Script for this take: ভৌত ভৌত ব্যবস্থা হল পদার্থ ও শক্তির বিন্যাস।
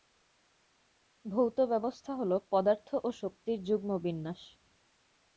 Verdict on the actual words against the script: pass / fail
fail